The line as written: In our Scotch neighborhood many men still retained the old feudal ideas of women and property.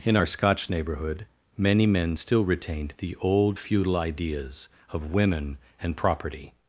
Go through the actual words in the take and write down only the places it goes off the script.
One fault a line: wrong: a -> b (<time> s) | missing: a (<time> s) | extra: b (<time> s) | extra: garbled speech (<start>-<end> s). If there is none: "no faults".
no faults